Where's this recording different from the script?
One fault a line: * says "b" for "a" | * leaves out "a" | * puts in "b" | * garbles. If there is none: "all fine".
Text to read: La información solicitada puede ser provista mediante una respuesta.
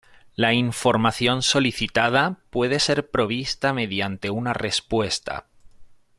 all fine